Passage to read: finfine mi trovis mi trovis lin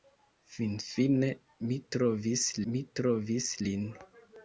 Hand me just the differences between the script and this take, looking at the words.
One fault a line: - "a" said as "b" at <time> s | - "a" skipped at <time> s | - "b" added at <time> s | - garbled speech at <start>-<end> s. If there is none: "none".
none